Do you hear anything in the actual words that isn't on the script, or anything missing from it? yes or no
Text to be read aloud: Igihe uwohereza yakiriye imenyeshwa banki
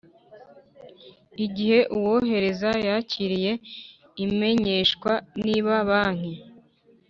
yes